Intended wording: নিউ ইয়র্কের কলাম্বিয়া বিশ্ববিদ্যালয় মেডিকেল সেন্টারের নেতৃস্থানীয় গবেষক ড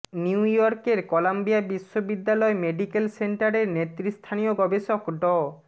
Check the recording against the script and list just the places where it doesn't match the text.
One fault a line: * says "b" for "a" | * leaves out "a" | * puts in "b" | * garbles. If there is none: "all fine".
all fine